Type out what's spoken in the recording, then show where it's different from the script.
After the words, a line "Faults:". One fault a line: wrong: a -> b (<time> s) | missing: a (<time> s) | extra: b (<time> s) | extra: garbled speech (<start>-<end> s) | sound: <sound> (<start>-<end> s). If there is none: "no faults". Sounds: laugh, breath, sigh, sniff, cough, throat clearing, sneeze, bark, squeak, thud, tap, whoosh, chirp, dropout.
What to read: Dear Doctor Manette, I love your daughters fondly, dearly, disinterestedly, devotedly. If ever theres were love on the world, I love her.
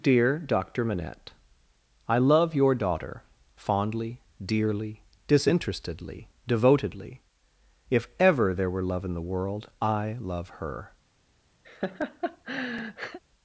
Dear Doctor Manette, I love your daughter fondly, dearly, disinterestedly, devotedly. If ever there were love in the world, I love her.
Faults:
wrong: daughters -> daughter (2.7 s)
wrong: theres -> there (8.5 s)
wrong: on -> in (9.0 s)
sound: laugh (11.6-13.2 s)